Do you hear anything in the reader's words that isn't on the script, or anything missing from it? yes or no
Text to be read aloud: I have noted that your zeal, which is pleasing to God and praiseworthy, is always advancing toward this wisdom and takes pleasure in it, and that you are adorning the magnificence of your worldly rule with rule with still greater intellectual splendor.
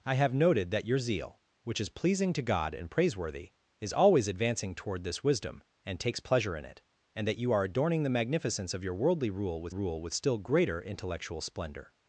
no